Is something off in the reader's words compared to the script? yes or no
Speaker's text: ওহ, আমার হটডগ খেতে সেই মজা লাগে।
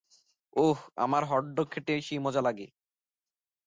no